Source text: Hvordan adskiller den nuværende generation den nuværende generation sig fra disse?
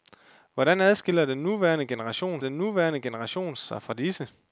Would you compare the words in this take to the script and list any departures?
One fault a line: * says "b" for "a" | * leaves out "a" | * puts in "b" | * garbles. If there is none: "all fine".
all fine